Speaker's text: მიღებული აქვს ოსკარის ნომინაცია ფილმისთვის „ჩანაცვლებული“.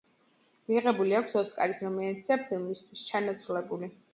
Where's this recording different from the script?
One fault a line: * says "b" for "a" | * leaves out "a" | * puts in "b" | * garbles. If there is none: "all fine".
all fine